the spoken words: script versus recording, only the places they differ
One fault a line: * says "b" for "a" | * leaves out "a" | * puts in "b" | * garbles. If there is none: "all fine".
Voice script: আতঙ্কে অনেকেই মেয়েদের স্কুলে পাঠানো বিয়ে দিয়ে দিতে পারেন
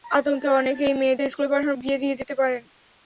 all fine